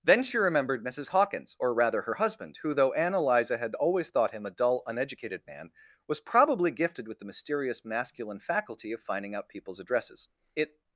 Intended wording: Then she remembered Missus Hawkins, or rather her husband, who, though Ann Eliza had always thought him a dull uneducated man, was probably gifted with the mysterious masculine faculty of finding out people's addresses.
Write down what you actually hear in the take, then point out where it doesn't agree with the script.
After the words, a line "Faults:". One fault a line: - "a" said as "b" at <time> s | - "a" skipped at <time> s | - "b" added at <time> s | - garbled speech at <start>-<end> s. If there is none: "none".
Then she remembered Missus Hawkins, or rather her husband, who, though Ann Eliza had always thought him a dull uneducated man, was probably gifted with the mysterious masculine faculty of finding out people's addresses. It
Faults:
- "It" added at 10.5 s